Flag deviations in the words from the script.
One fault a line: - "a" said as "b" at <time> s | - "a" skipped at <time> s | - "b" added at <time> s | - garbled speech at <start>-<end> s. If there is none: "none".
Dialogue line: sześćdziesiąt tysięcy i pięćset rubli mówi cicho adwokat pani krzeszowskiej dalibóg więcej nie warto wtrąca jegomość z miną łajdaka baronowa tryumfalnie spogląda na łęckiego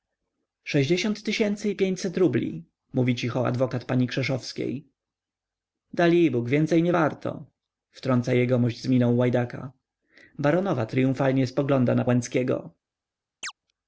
none